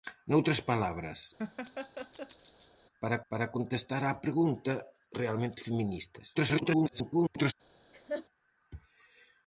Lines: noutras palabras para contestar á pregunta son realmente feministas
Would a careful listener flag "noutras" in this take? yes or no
no